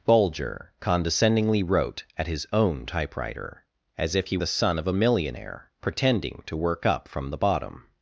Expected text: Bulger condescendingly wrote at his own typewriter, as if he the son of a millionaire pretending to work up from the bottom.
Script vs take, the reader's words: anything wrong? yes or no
no